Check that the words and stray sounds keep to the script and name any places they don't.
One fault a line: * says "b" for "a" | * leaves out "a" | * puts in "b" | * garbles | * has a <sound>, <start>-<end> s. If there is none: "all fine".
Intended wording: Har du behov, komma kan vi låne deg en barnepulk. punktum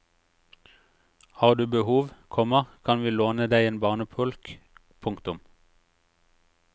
all fine